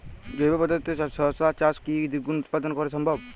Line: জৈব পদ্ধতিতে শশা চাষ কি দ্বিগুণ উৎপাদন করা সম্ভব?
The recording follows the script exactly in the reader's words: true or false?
true